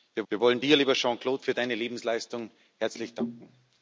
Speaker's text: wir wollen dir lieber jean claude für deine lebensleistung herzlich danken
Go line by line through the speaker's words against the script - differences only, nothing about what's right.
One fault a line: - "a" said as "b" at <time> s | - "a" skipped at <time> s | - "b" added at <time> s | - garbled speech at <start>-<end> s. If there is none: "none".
- "wir" added at 0.3 s